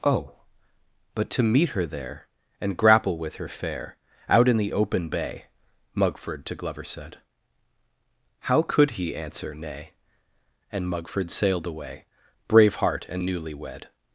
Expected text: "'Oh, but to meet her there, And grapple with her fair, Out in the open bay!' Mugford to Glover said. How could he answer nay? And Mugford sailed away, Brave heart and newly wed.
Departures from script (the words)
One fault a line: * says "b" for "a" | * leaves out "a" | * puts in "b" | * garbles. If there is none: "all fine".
all fine